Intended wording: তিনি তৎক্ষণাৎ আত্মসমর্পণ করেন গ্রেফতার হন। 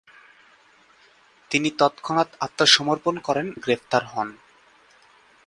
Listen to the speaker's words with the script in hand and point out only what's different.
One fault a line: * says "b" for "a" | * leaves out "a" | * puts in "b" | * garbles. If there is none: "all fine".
all fine